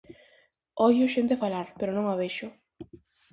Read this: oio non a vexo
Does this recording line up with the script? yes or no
no